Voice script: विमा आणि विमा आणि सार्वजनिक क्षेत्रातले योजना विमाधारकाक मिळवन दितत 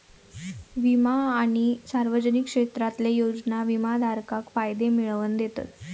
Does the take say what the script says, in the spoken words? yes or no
no